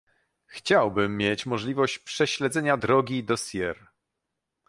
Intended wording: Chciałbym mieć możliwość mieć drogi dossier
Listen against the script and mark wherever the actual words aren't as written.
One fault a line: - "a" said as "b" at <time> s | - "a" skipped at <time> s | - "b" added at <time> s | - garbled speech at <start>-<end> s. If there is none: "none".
- "mieć" said as "prześledzenia" at 2.0 s